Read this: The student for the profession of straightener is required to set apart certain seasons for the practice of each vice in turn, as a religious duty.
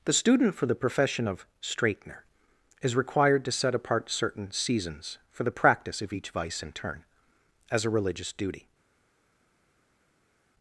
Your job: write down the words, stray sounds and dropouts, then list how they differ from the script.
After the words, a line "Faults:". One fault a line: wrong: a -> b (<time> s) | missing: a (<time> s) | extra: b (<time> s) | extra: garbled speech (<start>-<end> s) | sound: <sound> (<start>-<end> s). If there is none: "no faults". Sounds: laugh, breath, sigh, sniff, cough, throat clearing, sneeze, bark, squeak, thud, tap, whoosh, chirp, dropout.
The student for the profession of straightener is required to set apart certain seasons for the practice of each vice in turn, as a religious duty.
Faults:
no faults